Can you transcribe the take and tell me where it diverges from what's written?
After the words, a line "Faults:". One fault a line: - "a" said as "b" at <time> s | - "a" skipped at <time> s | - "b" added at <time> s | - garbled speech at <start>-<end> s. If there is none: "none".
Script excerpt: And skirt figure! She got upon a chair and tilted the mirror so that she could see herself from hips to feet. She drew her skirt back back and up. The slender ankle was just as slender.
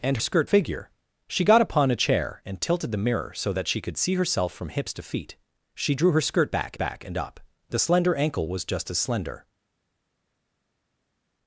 And skirt figure! She got upon a chair and tilted the mirror so that she could see herself from hips to feet. She drew her skirt back back and up. The slender ankle was just as slender.
Faults:
none